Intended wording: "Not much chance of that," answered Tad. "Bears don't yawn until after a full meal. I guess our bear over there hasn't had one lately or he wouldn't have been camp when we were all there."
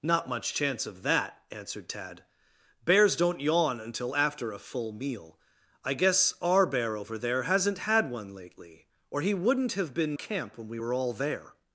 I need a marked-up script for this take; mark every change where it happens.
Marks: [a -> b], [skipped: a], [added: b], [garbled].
"Not much chance of that," answered Tad. "Bears don't yawn until after a full meal. I guess our bear over there hasn't had one lately or he wouldn't have been camp when we were all there."